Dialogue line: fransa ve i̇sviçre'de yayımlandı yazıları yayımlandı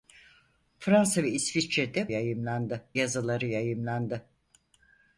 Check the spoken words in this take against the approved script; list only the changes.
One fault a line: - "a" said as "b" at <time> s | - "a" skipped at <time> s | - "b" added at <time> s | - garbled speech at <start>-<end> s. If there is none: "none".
none